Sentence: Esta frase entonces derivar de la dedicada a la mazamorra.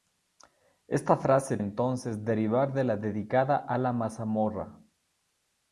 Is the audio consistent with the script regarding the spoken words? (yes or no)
yes